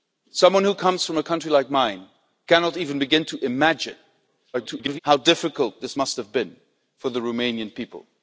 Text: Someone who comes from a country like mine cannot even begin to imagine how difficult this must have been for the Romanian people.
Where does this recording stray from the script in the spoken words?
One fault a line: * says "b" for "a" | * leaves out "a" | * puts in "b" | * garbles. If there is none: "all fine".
* garbles